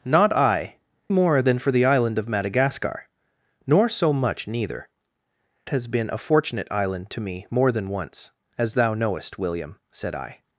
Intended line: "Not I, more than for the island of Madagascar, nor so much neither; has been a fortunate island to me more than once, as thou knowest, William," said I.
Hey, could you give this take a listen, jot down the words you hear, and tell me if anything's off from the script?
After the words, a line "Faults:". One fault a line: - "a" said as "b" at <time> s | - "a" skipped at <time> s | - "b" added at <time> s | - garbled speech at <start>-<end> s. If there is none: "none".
"Not I, more than for the island of Madagascar, nor so much neither; has been a fortunate island to me more than once, as thou knowest, William," said I.
Faults:
none